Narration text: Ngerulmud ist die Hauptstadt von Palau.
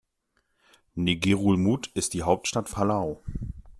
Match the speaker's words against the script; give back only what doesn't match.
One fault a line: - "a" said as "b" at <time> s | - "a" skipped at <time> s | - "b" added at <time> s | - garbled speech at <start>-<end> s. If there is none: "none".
- "von" skipped at 2.7 s